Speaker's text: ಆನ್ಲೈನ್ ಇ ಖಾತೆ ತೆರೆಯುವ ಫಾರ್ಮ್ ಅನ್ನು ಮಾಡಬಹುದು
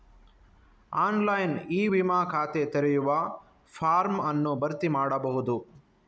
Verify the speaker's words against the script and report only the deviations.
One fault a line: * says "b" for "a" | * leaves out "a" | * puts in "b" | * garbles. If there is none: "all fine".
* puts in "ವಿಮಾ"
* puts in "ಭರ್ತಿ"